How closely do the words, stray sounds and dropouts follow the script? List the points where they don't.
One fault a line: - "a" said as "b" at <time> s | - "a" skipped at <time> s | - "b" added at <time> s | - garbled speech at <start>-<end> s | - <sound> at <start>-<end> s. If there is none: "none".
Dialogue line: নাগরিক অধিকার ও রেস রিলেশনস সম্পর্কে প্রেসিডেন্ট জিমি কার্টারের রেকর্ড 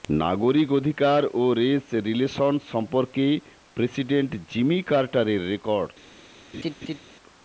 - laugh at 6.5-7.0 s